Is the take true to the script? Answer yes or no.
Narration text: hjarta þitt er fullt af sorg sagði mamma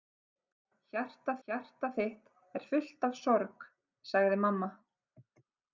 no